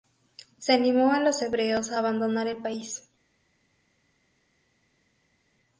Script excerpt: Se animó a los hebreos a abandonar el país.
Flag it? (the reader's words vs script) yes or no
no